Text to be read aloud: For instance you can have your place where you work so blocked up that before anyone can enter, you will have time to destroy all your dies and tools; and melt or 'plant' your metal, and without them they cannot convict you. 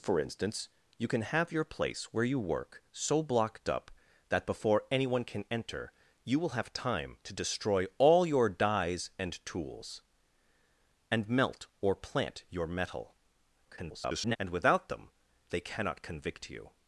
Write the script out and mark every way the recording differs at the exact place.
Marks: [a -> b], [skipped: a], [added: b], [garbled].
For instance you can have your place where you work so blocked up that before anyone can enter, you will have time to destroy all your dies and tools; and melt or 'plant' your metal, [garbled] and without them they cannot convict you.